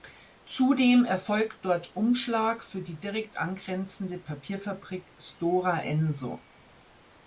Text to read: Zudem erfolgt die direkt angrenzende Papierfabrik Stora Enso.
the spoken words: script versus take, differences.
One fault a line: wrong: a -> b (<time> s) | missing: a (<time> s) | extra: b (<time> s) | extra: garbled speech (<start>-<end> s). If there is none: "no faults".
extra: dort Umschlag für (1.6 s)